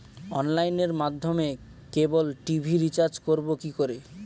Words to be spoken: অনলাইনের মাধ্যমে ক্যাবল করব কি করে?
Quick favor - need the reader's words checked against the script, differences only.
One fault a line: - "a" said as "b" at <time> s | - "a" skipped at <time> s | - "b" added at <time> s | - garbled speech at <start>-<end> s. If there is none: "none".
- "টি.ভি রিচার্জ" added at 2.5 s